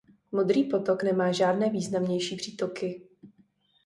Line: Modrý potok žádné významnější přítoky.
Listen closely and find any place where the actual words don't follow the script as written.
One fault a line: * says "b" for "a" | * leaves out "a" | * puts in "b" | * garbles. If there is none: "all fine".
* puts in "nemá"